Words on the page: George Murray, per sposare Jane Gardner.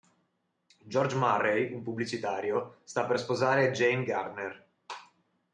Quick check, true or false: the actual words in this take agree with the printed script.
false